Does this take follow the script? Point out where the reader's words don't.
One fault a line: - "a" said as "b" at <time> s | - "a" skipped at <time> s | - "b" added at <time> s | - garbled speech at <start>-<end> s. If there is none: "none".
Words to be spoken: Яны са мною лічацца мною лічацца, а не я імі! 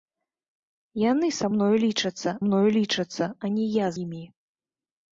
none